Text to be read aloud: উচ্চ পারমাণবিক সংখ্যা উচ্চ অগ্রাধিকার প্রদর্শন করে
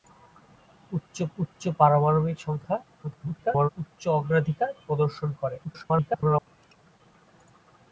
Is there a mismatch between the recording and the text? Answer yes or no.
yes